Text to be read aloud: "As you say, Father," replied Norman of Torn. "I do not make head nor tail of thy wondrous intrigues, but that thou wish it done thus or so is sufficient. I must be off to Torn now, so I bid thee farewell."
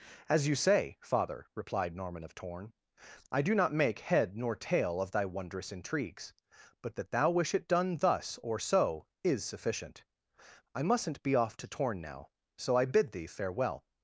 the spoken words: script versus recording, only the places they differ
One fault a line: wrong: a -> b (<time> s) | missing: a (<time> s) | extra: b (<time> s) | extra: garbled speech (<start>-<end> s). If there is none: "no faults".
wrong: must -> mustn't (10.8 s)